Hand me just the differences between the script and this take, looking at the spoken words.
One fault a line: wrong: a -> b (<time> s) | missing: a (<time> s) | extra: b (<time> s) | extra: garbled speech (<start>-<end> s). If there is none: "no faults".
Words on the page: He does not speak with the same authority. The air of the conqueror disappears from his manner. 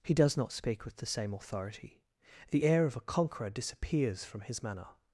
wrong: the -> a (3.0 s)